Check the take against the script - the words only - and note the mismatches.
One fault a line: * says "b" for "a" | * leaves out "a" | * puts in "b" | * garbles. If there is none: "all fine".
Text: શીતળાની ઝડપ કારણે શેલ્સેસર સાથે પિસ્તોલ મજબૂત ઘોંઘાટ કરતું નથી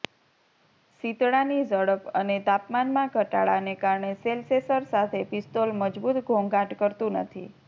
* puts in "અને તાપમાનમાં ઘટાડાને"